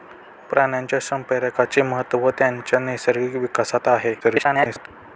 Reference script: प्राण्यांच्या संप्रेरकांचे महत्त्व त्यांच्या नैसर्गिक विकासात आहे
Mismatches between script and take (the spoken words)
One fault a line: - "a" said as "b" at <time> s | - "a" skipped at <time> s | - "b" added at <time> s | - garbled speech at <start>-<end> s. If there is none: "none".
- garbled speech at 4.2-4.9 s